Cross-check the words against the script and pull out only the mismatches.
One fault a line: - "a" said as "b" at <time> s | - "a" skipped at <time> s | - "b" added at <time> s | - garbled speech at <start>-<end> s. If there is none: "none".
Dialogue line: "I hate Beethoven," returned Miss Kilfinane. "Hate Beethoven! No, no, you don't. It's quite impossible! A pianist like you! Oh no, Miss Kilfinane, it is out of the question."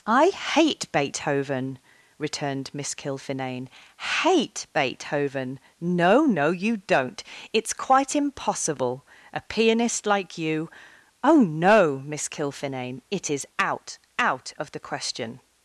- "out" added at 14.2 s